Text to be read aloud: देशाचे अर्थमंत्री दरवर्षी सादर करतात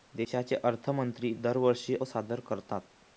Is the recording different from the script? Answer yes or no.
no